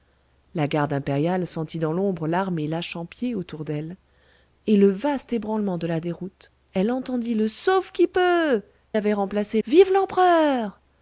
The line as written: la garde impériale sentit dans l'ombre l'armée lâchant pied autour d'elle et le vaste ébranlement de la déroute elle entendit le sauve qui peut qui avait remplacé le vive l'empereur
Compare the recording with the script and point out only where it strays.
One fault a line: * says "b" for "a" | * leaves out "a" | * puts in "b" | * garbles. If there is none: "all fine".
* leaves out "qui"
* leaves out "le"